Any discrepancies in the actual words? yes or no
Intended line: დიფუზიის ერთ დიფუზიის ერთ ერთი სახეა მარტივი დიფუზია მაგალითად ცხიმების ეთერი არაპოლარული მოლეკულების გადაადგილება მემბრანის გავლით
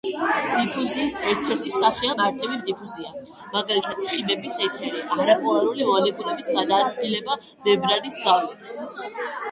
yes